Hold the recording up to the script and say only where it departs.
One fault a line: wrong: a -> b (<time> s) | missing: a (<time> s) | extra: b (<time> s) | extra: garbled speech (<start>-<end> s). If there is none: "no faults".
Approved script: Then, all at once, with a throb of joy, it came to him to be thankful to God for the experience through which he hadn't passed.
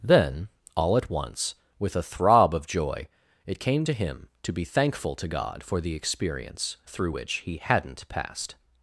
no faults